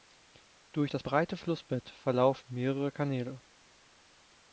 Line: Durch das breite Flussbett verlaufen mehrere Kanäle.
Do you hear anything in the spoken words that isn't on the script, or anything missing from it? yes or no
no